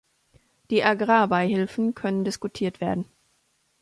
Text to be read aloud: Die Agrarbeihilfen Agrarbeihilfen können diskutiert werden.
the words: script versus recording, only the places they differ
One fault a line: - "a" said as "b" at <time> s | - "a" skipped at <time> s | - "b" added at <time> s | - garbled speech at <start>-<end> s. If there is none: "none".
- "Agrarbeihilfen" skipped at 1.9 s